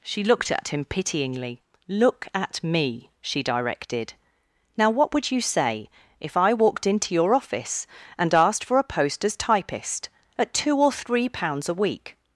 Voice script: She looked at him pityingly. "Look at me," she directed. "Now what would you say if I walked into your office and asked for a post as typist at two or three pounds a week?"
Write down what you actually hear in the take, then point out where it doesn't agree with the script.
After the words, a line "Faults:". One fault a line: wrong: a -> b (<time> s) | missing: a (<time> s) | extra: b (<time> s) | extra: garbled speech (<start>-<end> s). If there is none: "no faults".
She looked at him pityingly. "Look at me," she directed. "Now what would you say if I walked into your office and asked for a post as typist at two or three pounds a week?"
Faults:
no faults